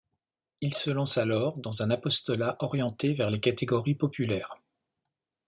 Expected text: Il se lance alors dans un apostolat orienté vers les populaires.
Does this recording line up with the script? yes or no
no